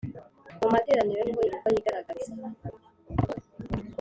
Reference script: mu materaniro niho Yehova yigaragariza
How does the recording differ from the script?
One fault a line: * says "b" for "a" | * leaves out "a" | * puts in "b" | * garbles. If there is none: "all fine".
all fine